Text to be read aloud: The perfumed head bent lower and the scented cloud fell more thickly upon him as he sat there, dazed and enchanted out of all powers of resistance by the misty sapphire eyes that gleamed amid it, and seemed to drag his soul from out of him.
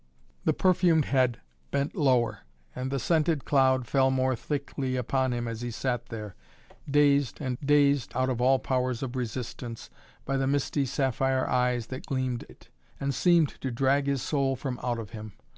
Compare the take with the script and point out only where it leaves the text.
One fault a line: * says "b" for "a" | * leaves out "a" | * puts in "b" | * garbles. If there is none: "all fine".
* says "dazed" for "enchanted"
* leaves out "amid"